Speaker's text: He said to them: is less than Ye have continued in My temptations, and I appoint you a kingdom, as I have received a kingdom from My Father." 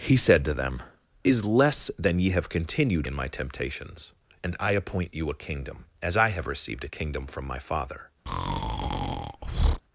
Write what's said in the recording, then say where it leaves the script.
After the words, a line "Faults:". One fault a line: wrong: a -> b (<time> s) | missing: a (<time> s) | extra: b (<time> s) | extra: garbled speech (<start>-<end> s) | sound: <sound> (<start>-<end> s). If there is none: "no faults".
He said to them: is less than Ye have continued in My temptations, and I appoint you a kingdom, as I have received a kingdom from My Father."
Faults:
sound: breath (8.3-9.8 s)